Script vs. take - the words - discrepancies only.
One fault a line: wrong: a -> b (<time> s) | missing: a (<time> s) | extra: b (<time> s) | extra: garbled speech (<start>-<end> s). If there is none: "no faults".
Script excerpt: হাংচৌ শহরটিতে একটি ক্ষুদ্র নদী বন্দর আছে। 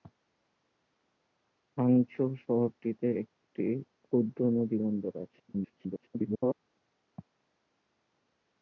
extra: garbled speech (5.5-6.6 s)